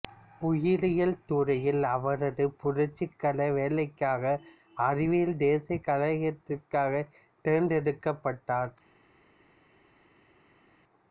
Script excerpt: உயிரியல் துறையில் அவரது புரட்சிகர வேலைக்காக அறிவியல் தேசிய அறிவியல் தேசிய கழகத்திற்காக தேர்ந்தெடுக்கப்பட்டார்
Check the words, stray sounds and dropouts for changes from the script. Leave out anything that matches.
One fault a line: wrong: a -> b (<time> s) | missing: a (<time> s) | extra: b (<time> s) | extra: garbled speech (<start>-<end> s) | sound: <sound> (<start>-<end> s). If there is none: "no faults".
missing: அறிவியல் தேசிய (5.8 s)